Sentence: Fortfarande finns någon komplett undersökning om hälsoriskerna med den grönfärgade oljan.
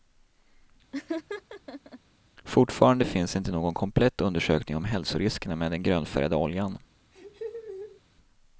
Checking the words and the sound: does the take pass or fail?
fail